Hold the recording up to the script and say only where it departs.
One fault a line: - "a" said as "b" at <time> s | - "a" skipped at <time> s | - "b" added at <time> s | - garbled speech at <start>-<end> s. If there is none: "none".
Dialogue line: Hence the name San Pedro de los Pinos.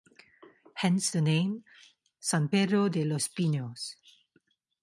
none